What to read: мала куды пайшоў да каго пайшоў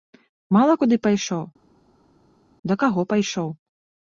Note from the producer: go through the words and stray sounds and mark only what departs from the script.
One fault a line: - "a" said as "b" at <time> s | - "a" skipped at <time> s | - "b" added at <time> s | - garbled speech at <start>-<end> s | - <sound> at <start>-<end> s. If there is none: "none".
none